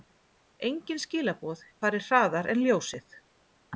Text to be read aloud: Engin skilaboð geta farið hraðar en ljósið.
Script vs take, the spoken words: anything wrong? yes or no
yes